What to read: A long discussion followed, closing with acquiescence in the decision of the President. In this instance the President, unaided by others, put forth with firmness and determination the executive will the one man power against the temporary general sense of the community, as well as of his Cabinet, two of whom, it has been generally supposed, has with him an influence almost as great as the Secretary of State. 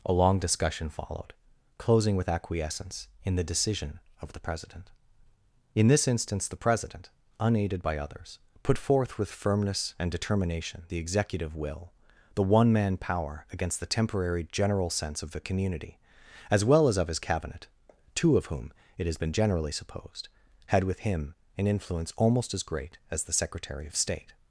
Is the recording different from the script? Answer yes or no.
yes